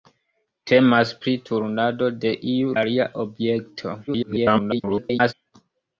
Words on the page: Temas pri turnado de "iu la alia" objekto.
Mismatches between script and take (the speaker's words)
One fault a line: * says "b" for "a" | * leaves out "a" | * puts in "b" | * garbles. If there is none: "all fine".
* leaves out "la"
* garbles